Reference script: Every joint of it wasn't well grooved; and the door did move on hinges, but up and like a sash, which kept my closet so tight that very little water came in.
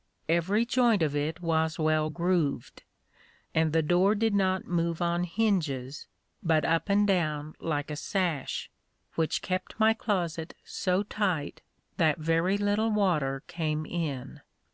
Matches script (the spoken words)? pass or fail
fail